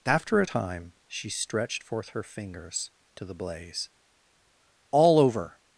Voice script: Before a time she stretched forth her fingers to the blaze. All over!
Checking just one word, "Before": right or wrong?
wrong